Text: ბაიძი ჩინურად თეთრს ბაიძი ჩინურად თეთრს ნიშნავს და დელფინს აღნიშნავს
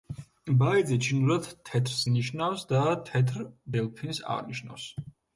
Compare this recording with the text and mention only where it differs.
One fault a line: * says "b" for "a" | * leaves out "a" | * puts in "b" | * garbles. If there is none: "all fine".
* leaves out "ბაიძი ჩინურად თეთრს"
* puts in "თეთრ"